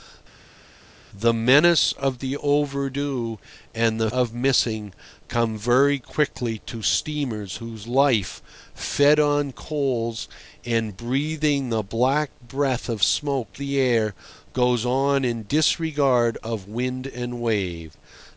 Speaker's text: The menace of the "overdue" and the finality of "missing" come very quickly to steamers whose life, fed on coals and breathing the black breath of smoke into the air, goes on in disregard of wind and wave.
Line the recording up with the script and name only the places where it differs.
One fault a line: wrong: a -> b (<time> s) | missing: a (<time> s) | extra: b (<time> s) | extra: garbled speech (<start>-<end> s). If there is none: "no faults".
missing: finality (4.1 s)
missing: into (13.6 s)